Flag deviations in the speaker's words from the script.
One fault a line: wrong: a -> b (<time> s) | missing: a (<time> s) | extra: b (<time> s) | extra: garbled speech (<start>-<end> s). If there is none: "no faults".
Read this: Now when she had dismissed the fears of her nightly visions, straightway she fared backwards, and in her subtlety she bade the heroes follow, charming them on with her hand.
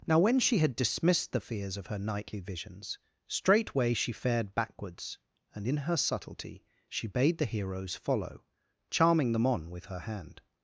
no faults